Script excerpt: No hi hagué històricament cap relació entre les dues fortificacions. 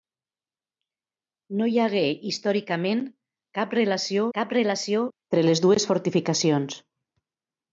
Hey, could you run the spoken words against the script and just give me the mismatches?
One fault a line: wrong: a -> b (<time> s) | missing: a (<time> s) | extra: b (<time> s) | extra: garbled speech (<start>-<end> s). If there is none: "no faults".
extra: cap relació (4.4 s)